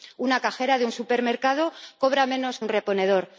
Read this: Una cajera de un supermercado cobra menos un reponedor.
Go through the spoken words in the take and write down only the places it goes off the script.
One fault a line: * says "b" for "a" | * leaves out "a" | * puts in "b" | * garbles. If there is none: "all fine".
all fine